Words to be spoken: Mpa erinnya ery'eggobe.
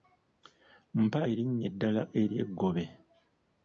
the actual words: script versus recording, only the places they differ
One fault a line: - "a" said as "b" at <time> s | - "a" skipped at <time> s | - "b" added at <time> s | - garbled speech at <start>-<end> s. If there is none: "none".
- "eddala" added at 1.7 s